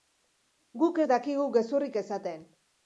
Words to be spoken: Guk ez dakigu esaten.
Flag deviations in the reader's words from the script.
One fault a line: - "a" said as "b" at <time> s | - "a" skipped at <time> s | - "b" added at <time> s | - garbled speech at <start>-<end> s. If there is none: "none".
- "gezurrik" added at 1.6 s